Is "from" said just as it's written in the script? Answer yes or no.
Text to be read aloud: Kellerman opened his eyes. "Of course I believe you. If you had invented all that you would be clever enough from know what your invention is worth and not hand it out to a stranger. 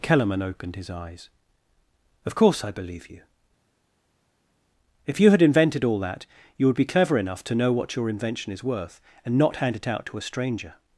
no